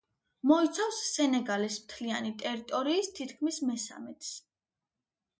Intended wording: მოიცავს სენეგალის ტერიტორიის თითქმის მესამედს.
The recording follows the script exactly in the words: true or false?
false